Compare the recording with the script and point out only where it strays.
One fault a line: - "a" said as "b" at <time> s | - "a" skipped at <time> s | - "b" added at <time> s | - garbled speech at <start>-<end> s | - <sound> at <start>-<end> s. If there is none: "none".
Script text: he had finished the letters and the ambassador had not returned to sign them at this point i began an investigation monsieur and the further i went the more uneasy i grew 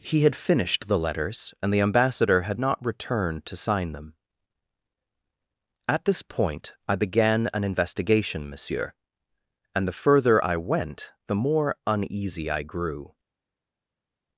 none